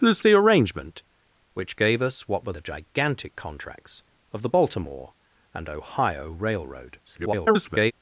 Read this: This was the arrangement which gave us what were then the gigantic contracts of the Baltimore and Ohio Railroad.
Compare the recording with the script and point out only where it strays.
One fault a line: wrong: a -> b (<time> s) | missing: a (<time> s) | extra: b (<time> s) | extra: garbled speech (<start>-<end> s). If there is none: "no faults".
missing: was (0.2 s)
missing: then (2.5 s)
extra: garbled speech (7.1-7.9 s)